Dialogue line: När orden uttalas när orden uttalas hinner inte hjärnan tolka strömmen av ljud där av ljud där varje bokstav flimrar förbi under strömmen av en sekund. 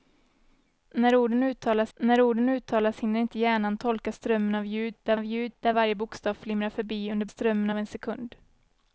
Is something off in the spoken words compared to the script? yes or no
no